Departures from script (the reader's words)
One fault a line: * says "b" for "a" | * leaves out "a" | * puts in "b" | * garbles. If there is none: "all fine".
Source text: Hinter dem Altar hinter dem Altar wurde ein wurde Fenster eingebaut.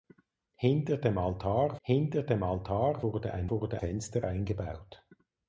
all fine